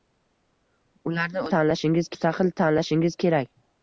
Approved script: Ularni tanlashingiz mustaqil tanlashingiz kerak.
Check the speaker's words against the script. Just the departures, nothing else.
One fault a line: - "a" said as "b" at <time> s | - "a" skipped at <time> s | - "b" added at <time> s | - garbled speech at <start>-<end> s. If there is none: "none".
none